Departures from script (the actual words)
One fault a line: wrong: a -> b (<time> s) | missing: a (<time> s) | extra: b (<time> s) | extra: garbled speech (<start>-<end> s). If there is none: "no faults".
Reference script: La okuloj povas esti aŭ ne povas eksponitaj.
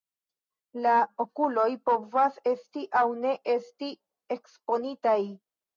wrong: povas -> esti (3.6 s)